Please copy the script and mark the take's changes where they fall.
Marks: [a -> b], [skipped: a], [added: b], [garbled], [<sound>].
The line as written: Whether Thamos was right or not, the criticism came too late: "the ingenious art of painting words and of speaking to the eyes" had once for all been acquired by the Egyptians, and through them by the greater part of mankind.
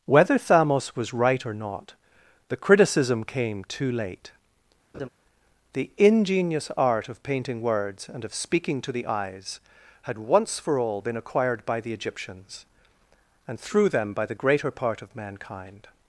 Whether Thamos was right or not, the criticism came too late: [laugh] "the ingenious art of painting words and of speaking to the eyes" had once for all been acquired by the Egyptians, and through them by the greater part of mankind.